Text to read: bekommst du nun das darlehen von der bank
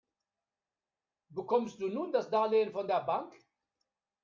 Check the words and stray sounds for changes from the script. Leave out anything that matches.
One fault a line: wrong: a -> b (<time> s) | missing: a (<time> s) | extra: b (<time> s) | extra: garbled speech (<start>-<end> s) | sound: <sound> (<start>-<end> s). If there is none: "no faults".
no faults